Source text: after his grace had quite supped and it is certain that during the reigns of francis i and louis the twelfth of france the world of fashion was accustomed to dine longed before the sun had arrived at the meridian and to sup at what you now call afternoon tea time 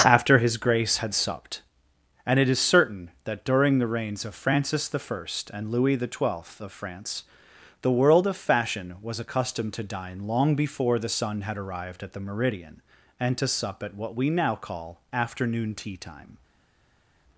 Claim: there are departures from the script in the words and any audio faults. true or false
true